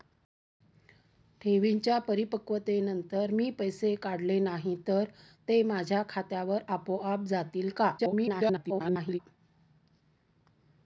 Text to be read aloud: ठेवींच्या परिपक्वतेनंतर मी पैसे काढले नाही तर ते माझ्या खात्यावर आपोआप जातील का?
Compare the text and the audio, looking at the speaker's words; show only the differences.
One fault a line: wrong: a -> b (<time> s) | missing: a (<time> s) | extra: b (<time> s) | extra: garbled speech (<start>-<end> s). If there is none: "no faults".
extra: garbled speech (8.0-9.2 s)